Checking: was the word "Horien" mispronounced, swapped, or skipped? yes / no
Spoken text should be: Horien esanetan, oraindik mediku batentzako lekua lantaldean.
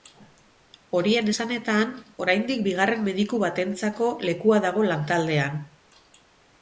no